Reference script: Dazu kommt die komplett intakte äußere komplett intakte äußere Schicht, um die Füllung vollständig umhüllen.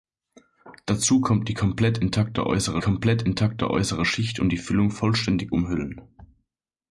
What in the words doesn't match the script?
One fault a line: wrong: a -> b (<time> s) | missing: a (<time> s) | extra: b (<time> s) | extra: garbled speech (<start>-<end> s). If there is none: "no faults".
no faults